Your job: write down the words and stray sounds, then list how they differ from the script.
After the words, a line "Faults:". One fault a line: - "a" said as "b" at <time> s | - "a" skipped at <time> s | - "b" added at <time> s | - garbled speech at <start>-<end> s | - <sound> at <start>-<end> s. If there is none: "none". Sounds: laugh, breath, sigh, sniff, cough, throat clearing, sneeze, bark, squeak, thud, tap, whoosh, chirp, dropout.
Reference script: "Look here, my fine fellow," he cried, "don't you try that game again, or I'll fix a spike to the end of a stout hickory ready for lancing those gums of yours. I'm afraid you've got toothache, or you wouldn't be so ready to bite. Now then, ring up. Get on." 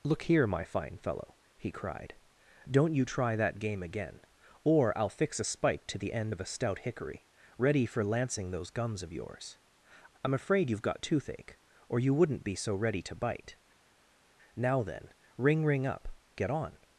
"Look here, my fine fellow," he cried, "don't you try that game again, or I'll fix a spike to the end of a stout hickory ready for lancing those gums of yours. I'm afraid you've got toothache, or you wouldn't be so ready to bite. Now then, ring ring up. Get on."
Faults:
- "ring" added at 15.7 s